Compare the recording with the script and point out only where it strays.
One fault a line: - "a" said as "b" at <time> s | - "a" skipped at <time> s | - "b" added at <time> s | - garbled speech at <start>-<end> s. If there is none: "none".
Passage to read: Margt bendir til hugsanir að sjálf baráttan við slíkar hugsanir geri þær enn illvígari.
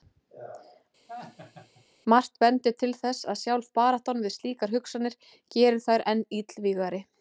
- "hugsanir" said as "þess" at 3.0 s